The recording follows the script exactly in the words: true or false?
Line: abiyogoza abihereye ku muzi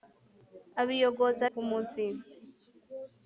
false